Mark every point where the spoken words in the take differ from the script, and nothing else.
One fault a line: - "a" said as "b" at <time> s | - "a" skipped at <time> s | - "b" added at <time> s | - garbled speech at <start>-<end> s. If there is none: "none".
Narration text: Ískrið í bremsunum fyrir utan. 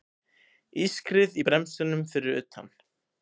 none